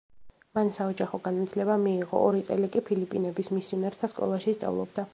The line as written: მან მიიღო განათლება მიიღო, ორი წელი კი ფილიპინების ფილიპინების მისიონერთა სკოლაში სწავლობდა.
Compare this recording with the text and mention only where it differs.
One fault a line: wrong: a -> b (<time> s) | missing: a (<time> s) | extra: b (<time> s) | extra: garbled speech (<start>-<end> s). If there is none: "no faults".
wrong: მიიღო -> საოჯახო (0.8 s)
missing: ფილიპინების (3.5 s)